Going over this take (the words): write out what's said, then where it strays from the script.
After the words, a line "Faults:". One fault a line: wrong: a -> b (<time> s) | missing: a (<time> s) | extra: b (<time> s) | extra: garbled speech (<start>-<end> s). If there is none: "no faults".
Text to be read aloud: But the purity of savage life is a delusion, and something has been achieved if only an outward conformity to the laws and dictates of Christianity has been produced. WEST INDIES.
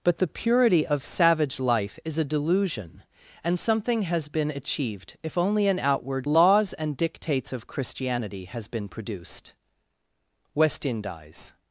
But the purity of savage life is a delusion, and something has been achieved if only an outward laws and dictates of Christianity has been produced. WEST INDIES.
Faults:
missing: conformity to the (6.3 s)